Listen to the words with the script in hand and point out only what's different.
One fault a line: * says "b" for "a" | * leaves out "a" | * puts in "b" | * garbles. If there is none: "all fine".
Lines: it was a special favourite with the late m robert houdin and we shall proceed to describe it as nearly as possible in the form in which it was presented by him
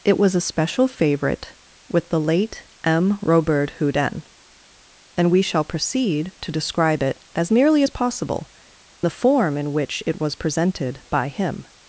* leaves out "in"